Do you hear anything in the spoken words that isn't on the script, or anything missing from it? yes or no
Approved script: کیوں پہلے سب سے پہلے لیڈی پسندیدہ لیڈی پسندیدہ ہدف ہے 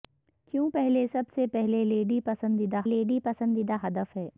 no